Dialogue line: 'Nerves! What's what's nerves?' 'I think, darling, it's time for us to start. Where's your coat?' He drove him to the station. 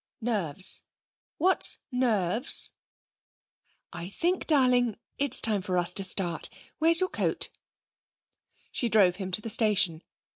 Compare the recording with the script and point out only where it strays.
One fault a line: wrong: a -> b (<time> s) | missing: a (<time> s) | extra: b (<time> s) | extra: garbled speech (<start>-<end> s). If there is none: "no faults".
missing: what's (1.8 s)
wrong: He -> She (8.7 s)